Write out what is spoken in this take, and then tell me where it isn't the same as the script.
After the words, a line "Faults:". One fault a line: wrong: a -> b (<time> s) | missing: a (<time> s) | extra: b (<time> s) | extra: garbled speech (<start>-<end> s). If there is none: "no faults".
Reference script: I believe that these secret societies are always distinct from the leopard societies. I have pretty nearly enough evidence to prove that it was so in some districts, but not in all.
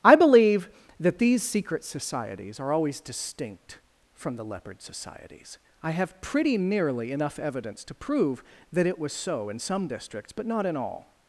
I believe that these secret societies are always distinct from the leopard societies. I have pretty nearly enough evidence to prove that it was so in some districts, but not in all.
Faults:
no faults